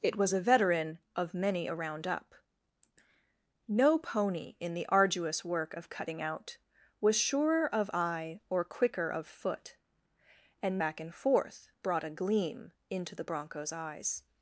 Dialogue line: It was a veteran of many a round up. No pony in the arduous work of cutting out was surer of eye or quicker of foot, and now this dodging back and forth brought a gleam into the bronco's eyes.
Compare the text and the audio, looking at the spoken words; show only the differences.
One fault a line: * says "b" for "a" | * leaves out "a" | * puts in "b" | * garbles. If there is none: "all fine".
* leaves out "now this dodging"